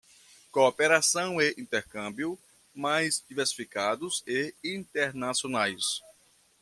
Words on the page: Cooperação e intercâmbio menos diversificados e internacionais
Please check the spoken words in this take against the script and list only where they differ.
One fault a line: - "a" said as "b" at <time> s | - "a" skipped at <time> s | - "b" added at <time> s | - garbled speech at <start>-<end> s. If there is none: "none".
- "menos" said as "mais" at 2.7 s